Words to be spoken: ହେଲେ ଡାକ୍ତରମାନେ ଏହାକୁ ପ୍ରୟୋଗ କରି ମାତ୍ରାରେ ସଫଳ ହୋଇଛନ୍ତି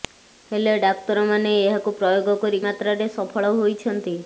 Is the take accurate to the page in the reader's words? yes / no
yes